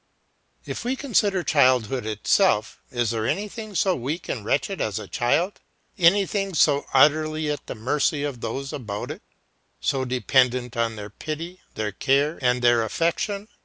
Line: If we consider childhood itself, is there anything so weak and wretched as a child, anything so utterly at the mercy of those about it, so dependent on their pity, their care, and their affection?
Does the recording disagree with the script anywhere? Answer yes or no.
no